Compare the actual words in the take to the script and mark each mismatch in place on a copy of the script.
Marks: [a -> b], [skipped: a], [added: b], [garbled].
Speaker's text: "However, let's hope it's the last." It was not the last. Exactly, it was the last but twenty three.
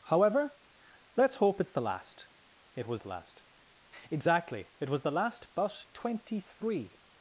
"However, let's hope it's the last." It was [skipped: not] the last. Exactly, it was the last but twenty three.